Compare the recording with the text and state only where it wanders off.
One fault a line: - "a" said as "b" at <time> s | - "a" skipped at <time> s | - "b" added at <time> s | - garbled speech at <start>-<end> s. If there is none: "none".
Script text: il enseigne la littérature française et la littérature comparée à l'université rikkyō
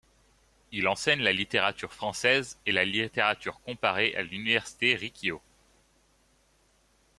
none